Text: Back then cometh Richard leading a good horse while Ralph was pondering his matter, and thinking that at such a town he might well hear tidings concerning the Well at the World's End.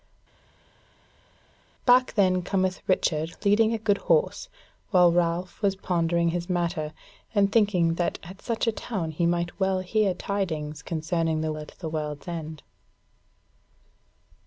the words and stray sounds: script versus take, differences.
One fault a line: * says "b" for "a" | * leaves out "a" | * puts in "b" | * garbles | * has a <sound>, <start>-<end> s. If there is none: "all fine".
* leaves out "Well"